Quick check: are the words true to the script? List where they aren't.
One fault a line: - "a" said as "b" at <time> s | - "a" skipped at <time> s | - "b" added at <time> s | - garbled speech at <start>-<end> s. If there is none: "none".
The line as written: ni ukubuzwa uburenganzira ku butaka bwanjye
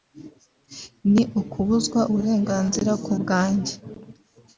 - "butaka" skipped at 3.1 s